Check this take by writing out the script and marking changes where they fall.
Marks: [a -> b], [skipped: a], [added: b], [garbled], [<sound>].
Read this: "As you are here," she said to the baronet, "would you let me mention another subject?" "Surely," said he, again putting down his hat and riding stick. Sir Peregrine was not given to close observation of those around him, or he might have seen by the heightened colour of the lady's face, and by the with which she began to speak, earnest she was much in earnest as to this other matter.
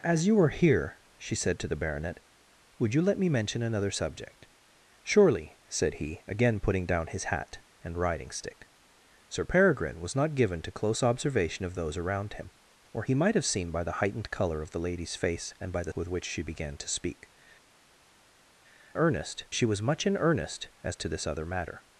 "As you are here," she said to the baronet, "would you let me mention another subject?" "Surely," said he, again putting down his hat and riding stick. Sir Peregrine was not given to close observation of those around him, or he might have seen by the heightened colour of the lady's face, and by the with which she began to speak, earnest she was much in earnest as to this other matter.